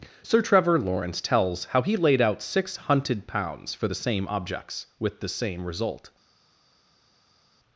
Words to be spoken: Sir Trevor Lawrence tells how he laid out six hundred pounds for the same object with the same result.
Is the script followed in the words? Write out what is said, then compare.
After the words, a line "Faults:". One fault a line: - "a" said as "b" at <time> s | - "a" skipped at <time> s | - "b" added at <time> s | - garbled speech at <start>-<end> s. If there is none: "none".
Sir Trevor Lawrence tells how he laid out six hunted pounds for the same objects with the same result.
Faults:
- "hundred" said as "hunted" at 2.8 s
- "object" said as "objects" at 4.3 s